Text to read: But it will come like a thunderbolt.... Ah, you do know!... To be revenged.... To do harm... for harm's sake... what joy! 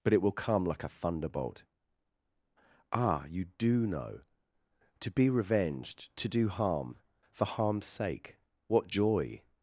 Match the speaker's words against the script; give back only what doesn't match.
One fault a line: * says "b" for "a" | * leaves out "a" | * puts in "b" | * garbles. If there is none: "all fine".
all fine